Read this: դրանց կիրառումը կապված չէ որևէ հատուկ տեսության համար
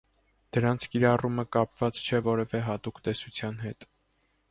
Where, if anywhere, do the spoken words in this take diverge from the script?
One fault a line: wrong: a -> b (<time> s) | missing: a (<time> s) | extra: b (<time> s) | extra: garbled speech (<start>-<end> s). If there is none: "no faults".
wrong: համար -> հետ (3.6 s)